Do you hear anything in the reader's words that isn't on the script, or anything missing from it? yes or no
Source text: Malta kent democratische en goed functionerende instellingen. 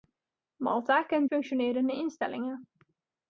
yes